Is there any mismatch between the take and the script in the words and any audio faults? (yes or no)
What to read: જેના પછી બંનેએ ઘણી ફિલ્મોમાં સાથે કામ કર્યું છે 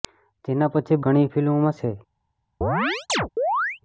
yes